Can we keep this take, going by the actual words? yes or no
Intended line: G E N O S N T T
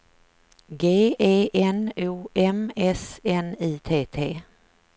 no